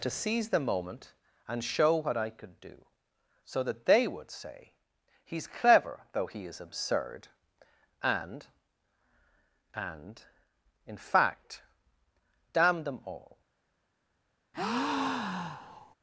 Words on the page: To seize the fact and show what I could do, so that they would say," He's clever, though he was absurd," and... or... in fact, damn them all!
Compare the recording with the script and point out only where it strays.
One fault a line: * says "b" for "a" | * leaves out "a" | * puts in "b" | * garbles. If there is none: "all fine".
* says "moment" for "fact"
* says "is" for "was"
* says "and" for "or"